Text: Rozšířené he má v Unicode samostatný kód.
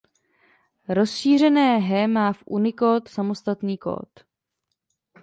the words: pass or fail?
pass